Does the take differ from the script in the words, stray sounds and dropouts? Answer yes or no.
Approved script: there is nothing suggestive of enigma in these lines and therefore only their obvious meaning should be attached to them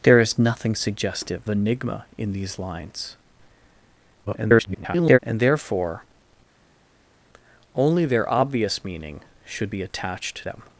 yes